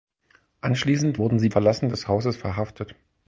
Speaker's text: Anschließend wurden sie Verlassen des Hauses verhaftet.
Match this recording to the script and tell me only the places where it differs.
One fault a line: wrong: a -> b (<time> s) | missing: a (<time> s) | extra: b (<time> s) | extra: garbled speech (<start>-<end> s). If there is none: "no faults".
no faults